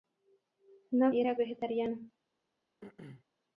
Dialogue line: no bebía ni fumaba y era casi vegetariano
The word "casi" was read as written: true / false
false